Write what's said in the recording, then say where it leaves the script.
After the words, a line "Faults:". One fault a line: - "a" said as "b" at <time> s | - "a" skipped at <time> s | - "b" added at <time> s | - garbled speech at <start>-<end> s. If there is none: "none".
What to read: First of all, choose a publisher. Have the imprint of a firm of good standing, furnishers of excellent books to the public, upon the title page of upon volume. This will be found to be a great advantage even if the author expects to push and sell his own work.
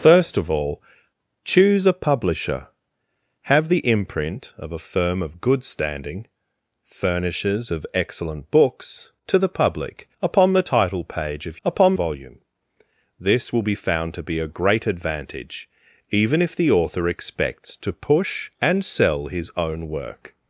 First of all, choose a publisher. Have the imprint of a firm of good standing, furnishers of excellent books to the public, upon the title page of upon volume. This will be found to be a great advantage even if the author expects to push and sell his own work.
Faults:
none